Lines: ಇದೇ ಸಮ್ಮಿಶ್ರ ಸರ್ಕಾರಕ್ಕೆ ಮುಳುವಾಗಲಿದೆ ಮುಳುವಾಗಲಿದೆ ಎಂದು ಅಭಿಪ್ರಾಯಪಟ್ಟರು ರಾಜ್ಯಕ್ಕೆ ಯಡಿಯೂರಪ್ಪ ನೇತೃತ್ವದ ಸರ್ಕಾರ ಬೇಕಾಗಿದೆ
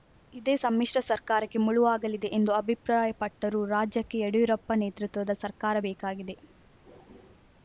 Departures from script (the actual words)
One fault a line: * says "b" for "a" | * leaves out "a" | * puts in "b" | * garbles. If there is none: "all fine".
* leaves out "ಮುಳುವಾಗಲಿದೆ"